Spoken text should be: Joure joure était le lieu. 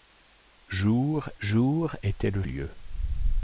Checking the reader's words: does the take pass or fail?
pass